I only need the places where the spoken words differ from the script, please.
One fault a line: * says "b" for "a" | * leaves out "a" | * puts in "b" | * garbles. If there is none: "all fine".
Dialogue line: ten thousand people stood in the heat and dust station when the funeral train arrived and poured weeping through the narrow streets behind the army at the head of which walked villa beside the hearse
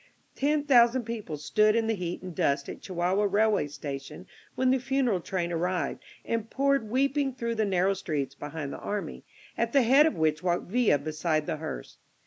* puts in "at chihuahua railway"